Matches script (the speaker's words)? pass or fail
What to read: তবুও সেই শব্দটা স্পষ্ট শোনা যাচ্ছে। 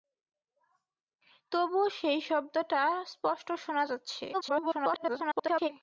fail